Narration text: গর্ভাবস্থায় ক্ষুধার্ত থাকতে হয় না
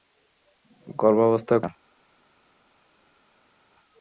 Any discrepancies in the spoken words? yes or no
yes